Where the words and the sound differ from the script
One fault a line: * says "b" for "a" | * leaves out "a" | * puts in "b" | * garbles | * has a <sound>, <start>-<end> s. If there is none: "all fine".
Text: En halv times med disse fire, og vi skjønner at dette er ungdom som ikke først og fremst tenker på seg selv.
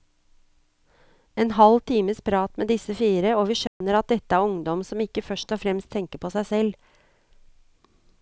* puts in "prat"
* has a dropout, 3.7-3.8 s